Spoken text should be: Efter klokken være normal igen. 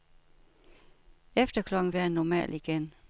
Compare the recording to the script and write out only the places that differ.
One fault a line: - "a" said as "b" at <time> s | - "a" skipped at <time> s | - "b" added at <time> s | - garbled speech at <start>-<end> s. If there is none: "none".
none